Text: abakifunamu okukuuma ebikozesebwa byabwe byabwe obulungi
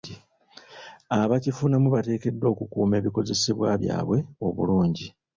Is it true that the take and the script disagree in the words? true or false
true